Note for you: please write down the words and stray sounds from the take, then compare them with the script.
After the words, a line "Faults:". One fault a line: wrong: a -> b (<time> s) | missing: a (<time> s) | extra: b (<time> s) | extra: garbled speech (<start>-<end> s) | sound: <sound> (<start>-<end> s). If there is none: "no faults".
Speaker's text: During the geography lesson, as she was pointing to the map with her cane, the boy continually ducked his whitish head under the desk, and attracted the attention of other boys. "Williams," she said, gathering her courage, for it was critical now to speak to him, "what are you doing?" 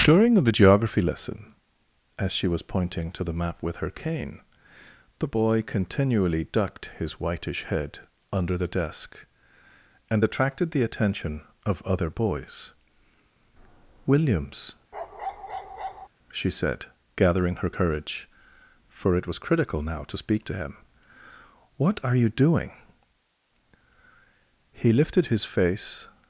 During the geography lesson, as she was pointing to the map with her cane, the boy continually ducked his whitish head under the desk, and attracted the attention of other boys. "Williams," she said, gathering her courage, for it was critical now to speak to him, "what are you doing?" He lifted his face
Faults:
sound: bark (14.9-16.1 s)
extra: He lifted his face (24.8 s)